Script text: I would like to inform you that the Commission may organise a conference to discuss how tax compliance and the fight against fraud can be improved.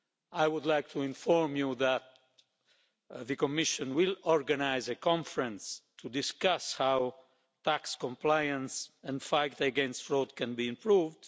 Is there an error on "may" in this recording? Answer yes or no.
yes